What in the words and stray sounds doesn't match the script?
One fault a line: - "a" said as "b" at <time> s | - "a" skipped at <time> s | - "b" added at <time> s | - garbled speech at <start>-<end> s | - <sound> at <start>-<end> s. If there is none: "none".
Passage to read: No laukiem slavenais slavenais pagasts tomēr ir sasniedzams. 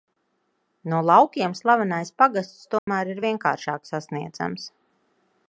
- "slavenais" skipped at 2.1 s
- dropout at 2.8-2.9 s
- "vienkāršāk" added at 3.3 s